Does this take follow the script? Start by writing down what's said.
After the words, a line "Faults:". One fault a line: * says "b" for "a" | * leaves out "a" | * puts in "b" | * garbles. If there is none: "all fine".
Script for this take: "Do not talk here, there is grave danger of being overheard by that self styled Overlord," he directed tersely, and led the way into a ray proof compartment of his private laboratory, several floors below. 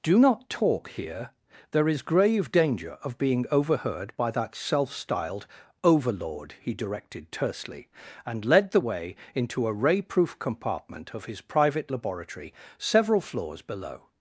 "Do not talk here, there is grave danger of being overheard by that self styled Overlord," he directed tersely, and led the way into a ray proof compartment of his private laboratory, several floors below.
Faults:
all fine